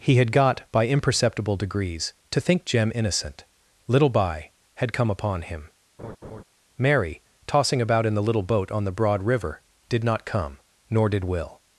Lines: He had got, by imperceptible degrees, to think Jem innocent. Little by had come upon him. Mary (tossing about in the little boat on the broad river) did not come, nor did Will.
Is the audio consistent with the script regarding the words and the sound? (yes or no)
no